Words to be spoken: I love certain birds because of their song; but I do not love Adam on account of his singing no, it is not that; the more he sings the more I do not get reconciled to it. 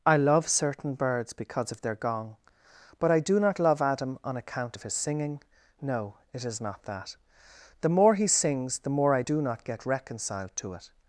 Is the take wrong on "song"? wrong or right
wrong